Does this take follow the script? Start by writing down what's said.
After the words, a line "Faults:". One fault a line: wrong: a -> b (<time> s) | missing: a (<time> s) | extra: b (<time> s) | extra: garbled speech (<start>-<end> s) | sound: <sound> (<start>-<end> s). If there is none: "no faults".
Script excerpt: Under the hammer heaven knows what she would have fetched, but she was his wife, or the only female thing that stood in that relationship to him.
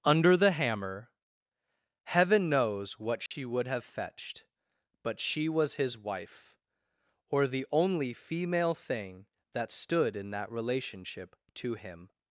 Under the hammer heaven knows what she would have fetched, but she was his wife, or the only female thing that stood in that relationship to him.
Faults:
sound: dropout (3.3-3.3 s)